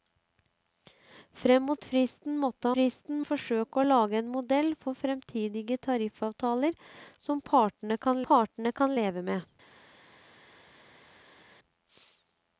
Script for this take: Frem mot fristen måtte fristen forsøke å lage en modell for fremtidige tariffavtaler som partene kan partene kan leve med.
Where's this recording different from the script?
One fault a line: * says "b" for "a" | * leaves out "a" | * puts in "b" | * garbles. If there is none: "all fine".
all fine